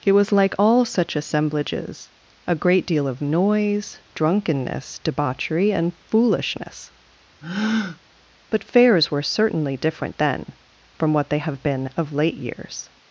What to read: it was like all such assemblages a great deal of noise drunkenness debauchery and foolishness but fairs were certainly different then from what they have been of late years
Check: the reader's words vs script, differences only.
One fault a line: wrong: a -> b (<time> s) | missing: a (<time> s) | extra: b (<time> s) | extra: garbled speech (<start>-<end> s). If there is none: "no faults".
no faults